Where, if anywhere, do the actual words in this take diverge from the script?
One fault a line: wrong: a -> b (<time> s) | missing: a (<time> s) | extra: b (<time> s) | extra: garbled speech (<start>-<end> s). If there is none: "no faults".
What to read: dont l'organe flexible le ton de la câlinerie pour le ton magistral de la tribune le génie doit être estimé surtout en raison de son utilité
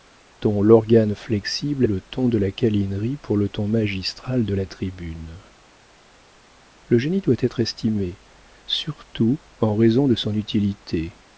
no faults